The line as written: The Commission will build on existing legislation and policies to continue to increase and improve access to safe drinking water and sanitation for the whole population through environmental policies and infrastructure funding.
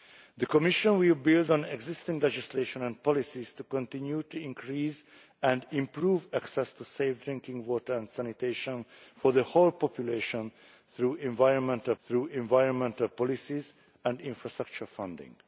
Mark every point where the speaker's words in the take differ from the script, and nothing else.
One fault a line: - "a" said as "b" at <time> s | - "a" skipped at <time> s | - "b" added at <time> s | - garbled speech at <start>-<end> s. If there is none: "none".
- "through environmental" added at 12.0 s